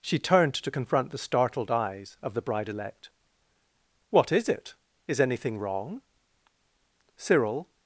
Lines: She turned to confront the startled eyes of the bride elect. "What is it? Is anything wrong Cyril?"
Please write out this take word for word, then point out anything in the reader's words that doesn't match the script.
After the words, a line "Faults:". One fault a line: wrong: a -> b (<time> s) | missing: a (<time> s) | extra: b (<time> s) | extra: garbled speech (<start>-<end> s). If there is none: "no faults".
She turned to confront the startled eyes of the bride elect. "What is it? Is anything wrong Cyril?"
Faults:
no faults